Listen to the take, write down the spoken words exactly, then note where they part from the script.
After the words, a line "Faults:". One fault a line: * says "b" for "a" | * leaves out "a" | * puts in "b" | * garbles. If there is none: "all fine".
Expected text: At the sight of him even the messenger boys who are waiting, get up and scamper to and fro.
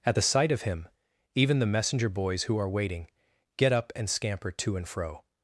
At the sight of him even the messenger boys who are waiting, get up and scamper to and fro.
Faults:
all fine